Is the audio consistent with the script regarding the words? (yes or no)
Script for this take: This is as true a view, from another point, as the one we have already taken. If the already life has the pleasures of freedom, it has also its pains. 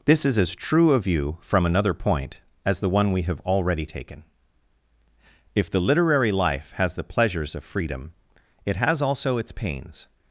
no